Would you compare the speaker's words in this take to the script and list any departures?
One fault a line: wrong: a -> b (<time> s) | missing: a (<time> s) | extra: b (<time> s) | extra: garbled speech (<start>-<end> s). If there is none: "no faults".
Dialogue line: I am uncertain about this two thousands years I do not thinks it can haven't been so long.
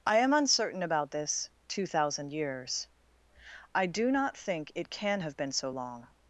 wrong: thousands -> thousand (1.8 s)
wrong: thinks -> think (4.4 s)
wrong: haven't -> have (5.2 s)